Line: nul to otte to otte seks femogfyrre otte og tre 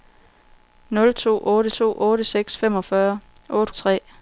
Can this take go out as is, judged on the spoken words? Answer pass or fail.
pass